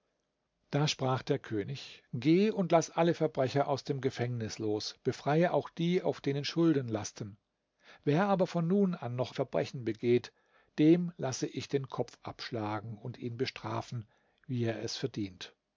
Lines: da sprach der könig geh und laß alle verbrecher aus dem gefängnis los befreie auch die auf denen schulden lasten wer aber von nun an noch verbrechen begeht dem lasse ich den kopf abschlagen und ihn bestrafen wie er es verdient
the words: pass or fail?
pass